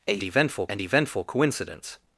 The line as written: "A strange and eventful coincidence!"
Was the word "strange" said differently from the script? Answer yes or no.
yes